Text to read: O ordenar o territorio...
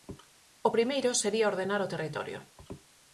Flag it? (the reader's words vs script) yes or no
yes